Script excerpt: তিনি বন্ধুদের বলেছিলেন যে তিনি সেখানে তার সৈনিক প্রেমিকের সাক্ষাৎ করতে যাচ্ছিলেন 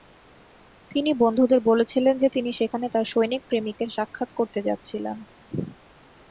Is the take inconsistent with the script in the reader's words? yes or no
no